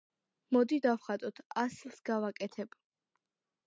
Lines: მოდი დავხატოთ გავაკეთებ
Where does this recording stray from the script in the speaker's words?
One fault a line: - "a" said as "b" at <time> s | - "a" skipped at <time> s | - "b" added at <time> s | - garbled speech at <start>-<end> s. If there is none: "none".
- "ასლს" added at 1.7 s